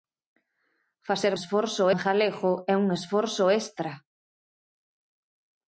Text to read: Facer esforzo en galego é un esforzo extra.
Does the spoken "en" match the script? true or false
true